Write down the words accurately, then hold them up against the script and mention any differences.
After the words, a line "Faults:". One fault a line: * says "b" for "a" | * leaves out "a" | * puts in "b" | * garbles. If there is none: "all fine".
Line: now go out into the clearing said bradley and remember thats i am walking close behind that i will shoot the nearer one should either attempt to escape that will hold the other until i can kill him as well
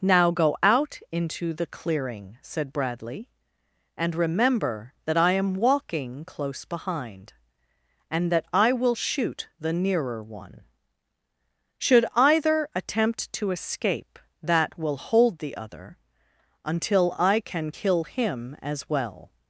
now go out into the clearing said bradley and remember that i am walking close behind and that i will shoot the nearer one should either attempt to escape that will hold the other until i can kill him as well
Faults:
* says "that" for "thats"
* puts in "and"